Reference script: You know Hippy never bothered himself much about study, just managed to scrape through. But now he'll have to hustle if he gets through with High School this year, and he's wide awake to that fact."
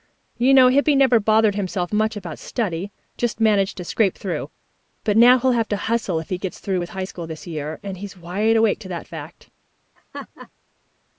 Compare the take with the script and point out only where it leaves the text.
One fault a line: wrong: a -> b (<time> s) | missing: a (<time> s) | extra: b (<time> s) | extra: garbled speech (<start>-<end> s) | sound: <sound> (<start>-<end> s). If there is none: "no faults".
sound: laugh (10.0-10.5 s)